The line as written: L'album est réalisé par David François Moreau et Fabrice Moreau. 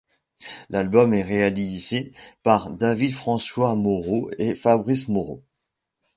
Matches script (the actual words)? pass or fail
pass